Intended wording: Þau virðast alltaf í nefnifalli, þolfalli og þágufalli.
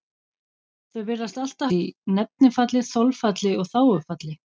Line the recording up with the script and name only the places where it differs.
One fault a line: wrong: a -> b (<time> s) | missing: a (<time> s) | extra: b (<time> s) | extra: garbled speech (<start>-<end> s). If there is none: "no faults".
no faults